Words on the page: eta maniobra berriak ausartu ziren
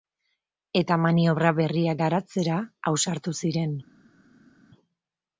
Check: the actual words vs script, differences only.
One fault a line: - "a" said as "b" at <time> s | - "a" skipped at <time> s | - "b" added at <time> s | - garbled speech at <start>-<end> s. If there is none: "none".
- "garatzera" added at 2.0 s